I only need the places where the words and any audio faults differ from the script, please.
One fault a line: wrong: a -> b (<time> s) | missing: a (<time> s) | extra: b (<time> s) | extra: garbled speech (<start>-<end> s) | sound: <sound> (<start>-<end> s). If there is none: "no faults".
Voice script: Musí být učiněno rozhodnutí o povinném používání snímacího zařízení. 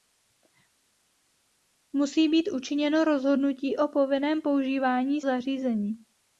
missing: snímacího (5.2 s)